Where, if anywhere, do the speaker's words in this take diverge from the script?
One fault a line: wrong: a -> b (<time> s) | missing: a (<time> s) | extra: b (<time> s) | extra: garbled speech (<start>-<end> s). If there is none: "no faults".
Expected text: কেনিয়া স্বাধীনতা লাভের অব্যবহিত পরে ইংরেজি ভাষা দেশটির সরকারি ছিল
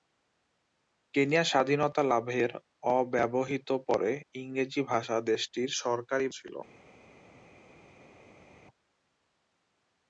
no faults